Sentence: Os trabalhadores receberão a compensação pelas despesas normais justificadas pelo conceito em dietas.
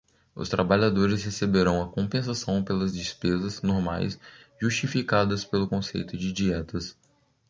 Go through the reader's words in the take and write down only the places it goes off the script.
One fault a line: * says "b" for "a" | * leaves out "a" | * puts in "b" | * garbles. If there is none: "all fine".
* says "de" for "em"